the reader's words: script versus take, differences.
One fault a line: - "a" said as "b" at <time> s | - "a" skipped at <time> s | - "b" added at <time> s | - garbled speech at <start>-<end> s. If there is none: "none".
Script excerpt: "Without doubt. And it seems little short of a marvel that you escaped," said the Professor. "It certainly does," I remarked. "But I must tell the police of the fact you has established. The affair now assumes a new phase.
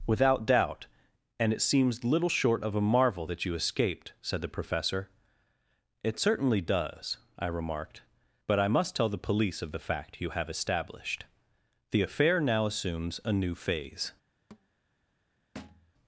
- "has" said as "have" at 10.3 s